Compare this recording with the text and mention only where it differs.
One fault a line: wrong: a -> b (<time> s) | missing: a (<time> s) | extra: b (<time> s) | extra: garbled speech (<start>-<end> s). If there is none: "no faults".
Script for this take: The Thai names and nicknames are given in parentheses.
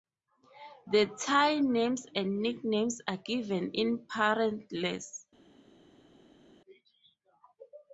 no faults